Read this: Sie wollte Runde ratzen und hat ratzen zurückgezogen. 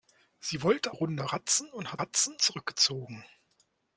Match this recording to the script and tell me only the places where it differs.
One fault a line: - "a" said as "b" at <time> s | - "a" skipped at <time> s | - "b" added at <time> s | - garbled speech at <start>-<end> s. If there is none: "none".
none